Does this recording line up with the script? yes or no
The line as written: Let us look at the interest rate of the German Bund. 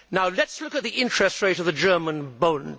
yes